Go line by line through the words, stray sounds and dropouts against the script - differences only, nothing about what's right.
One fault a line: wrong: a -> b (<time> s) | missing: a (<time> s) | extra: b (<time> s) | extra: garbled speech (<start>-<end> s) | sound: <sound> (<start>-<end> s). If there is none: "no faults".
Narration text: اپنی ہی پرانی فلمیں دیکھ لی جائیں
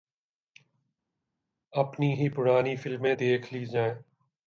no faults